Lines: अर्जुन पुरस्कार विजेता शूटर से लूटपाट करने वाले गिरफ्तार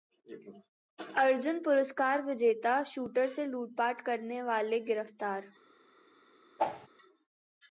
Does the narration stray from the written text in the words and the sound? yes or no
yes